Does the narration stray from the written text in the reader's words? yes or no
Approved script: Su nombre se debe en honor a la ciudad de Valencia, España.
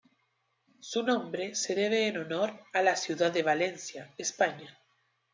no